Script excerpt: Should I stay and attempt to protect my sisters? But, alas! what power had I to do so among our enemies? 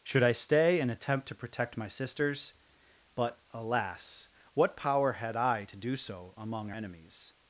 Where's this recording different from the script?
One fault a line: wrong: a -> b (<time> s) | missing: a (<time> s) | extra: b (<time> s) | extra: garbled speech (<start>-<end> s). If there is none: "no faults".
missing: our (6.7 s)